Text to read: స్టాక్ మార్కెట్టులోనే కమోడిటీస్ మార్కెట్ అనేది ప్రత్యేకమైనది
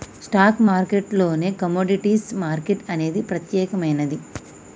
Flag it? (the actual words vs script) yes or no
no